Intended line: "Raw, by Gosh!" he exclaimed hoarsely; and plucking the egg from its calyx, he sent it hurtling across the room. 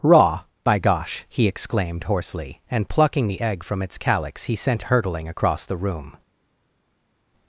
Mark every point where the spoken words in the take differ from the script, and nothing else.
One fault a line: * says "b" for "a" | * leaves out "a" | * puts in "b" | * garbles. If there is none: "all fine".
* leaves out "it"